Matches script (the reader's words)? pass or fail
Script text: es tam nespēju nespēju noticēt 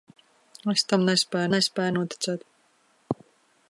pass